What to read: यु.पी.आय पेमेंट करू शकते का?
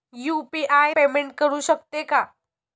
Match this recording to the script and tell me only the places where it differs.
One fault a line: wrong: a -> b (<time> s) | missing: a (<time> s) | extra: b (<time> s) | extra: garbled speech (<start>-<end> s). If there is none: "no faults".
no faults